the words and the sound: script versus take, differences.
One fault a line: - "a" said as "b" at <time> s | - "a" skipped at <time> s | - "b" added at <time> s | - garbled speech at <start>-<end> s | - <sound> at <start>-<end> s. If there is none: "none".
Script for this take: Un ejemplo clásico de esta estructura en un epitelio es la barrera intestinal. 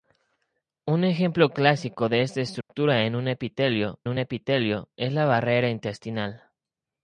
- dropout at 2.6-2.7 s
- "un epitelio" added at 4.1 s